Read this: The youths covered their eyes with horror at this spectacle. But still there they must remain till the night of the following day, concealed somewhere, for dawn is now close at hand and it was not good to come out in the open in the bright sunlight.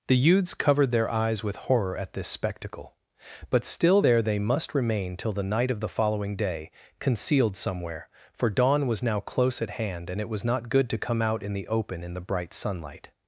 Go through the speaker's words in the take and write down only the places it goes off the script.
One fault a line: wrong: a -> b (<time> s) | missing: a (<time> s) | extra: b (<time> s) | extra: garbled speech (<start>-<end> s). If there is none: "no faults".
wrong: is -> was (8.9 s)